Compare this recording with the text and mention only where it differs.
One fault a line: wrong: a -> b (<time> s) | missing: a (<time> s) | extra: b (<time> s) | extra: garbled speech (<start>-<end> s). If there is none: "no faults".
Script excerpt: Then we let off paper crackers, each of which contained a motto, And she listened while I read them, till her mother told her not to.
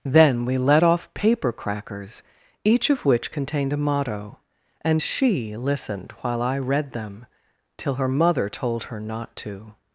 no faults